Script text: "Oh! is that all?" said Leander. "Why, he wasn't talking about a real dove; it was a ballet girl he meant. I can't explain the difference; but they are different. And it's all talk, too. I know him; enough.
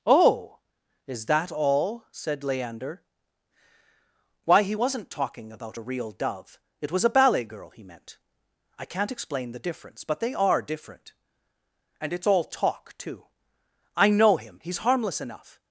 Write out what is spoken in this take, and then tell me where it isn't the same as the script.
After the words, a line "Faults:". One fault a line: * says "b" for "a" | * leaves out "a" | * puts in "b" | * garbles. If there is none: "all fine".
"Oh! is that all?" said Leander. "Why, he wasn't talking about a real dove; it was a ballet girl he meant. I can't explain the difference; but they are different. And it's all talk, too. I know him; he's harmless enough.
Faults:
* puts in "he's harmless"